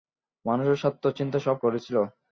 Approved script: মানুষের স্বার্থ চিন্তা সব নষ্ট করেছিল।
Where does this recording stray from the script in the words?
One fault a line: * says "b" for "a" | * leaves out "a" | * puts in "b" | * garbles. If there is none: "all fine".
* leaves out "নষ্ট"